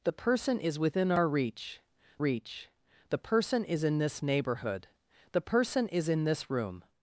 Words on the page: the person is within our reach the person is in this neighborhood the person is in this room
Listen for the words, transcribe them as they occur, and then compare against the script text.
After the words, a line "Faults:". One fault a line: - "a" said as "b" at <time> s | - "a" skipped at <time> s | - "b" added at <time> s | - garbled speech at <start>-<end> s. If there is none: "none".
the person is within our reach reach the person is in this neighborhood the person is in this room
Faults:
- "reach" added at 2.2 s